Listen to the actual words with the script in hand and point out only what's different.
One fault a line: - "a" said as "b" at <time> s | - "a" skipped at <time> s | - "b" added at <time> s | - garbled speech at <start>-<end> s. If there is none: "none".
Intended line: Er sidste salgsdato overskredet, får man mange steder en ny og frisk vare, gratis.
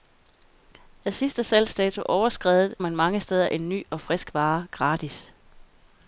- "får" skipped at 2.8 s